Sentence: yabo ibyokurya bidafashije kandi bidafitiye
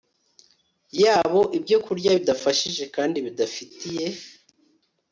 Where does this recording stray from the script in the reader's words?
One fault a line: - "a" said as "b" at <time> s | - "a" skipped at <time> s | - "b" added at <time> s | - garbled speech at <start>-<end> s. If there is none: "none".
none